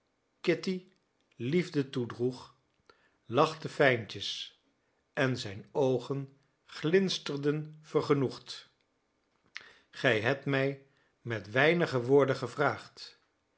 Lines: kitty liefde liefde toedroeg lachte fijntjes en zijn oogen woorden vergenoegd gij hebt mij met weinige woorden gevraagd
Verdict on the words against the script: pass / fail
fail